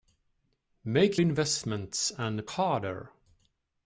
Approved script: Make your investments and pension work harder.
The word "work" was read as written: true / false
false